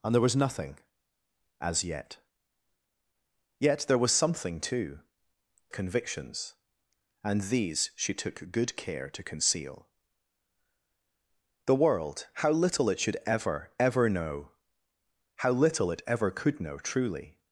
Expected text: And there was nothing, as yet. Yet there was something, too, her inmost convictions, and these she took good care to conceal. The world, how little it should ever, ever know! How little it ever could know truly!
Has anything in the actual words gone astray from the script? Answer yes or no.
yes